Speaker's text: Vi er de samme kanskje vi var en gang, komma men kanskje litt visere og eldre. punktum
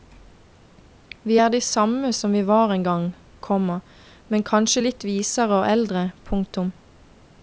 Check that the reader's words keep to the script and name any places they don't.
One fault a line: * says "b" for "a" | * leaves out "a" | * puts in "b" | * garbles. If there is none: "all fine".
* says "som" for "kanskje"